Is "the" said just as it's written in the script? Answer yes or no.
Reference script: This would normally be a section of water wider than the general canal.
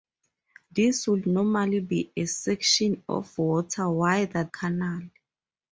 no